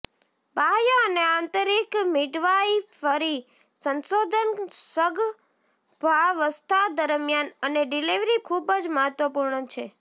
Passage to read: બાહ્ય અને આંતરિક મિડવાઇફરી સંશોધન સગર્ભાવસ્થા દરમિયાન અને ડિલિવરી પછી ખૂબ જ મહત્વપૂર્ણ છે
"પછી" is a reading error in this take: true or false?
true